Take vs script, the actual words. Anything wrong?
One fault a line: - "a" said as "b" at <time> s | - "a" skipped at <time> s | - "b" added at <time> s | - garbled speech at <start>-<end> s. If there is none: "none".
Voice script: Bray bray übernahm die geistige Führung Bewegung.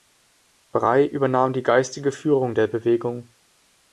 - "bray" skipped at 1.1 s
- "der" added at 2.5 s